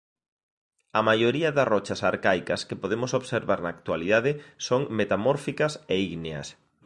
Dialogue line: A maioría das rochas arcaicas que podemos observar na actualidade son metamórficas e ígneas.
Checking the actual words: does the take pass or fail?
pass